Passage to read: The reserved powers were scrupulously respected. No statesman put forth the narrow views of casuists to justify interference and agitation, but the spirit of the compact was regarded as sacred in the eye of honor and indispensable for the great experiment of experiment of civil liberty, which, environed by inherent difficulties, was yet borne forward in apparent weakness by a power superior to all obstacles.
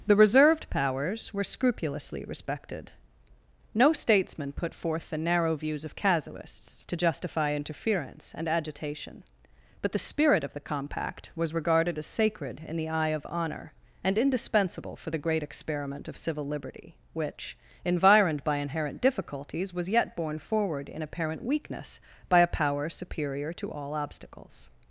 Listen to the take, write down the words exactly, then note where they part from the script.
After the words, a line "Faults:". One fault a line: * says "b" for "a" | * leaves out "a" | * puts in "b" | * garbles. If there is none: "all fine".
The reserved powers were scrupulously respected. No statesman put forth the narrow views of casuists to justify interference and agitation, but the spirit of the compact was regarded as sacred in the eye of honor and indispensable for the great experiment of civil liberty, which, environed by inherent difficulties, was yet borne forward in apparent weakness by a power superior to all obstacles.
Faults:
* leaves out "experiment of"